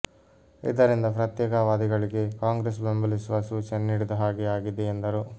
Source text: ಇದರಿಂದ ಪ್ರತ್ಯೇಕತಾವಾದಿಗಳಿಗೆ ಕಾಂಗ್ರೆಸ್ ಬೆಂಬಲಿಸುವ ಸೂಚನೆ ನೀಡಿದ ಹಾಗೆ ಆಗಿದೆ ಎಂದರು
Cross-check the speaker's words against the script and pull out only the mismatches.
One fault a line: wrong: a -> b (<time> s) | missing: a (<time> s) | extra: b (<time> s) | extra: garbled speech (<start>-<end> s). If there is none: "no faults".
no faults